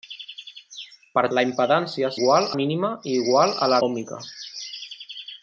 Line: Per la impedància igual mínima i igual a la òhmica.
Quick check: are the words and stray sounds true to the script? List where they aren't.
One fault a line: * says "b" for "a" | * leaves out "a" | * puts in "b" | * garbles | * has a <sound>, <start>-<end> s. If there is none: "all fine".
all fine